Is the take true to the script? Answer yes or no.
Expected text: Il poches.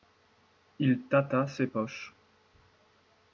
no